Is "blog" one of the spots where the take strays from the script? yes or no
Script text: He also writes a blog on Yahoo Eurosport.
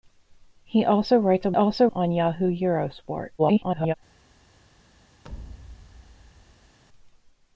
yes